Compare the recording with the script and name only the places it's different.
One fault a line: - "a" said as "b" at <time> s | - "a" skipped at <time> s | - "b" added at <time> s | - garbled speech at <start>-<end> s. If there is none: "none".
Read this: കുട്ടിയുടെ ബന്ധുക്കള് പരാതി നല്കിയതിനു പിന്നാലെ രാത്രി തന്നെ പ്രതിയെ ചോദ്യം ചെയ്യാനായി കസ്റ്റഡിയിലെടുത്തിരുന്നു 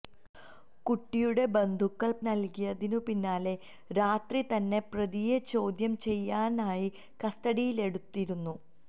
- "പരാതി" skipped at 2.1 s